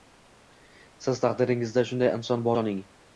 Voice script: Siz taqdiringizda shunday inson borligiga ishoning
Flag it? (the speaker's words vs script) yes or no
yes